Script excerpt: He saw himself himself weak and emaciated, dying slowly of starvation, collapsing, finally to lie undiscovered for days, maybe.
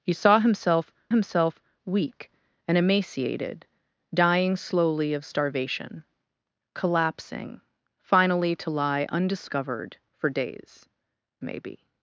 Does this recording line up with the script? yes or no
yes